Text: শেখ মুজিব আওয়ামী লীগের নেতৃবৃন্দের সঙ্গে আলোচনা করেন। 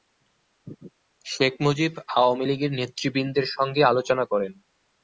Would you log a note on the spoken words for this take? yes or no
no